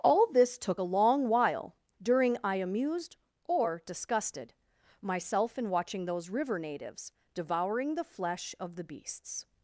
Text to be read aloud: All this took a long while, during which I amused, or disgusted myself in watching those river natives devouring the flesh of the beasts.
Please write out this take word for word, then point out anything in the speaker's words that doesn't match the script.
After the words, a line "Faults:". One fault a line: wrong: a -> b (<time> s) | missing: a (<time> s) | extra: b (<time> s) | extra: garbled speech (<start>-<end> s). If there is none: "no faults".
All this took a long while, during I amused, or disgusted myself in watching those river natives devouring the flesh of the beasts.
Faults:
missing: which (2.4 s)